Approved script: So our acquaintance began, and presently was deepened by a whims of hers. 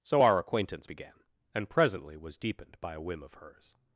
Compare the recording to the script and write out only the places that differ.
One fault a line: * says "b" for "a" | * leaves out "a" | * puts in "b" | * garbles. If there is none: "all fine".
* says "whim" for "whims"